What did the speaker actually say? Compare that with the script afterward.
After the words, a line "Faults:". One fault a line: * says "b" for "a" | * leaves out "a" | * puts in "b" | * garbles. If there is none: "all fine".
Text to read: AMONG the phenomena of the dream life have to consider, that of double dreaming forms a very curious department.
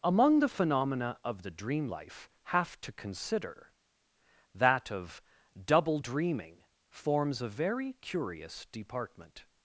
AMONG the phenomena of the dream life have to consider, that of double dreaming forms a very curious department.
Faults:
all fine